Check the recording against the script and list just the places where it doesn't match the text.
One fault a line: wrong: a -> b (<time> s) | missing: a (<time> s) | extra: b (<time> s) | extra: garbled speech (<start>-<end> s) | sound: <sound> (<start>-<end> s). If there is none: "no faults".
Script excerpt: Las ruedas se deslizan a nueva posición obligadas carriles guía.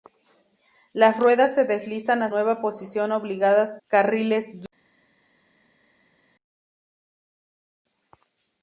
no faults